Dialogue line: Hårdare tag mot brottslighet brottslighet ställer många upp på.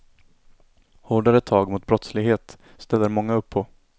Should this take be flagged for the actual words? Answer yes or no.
yes